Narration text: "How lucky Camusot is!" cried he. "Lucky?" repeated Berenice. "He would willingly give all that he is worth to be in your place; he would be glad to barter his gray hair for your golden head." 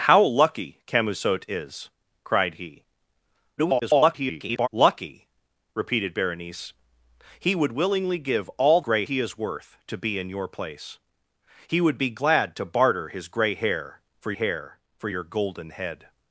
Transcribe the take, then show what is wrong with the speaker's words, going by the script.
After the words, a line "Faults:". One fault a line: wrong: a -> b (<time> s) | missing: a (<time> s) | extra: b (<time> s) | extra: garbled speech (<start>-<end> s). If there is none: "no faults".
"How lucky Camusot is!" cried he. [garbled] "Lucky?" repeated Berenice. "He would willingly give all gray he is worth to be in your place; he would be glad to barter his gray hair for hair for your golden head."
Faults:
extra: garbled speech (3.6-4.7 s)
wrong: that -> gray (8.8 s)
extra: hair for (14.3 s)